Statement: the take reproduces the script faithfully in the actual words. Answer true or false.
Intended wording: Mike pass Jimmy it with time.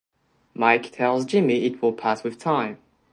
false